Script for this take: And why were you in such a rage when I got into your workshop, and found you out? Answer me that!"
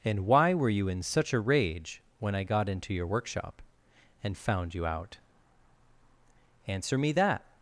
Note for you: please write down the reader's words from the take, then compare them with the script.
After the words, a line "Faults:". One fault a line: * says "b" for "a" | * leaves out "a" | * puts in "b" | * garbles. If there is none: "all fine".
And why were you in such a rage when I got into your workshop, and found you out? Answer me that!"
Faults:
all fine